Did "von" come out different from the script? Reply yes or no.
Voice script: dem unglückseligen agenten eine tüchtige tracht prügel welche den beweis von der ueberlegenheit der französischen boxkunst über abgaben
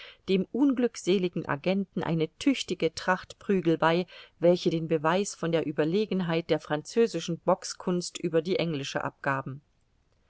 no